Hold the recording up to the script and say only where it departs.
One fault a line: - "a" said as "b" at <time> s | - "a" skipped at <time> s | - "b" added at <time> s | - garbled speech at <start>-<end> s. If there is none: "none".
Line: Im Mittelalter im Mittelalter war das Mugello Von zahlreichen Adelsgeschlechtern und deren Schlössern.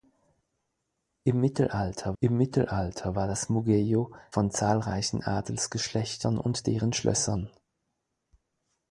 none